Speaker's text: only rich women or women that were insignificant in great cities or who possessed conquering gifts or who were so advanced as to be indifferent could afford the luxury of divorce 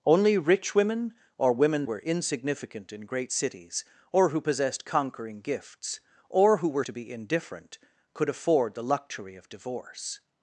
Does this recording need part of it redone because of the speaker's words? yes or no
yes